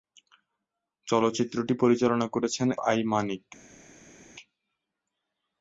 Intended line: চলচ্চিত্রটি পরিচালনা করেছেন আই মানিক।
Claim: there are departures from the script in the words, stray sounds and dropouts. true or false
false